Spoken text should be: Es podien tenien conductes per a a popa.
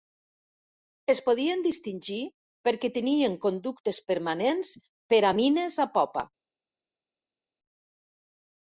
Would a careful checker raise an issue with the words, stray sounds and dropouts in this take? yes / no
yes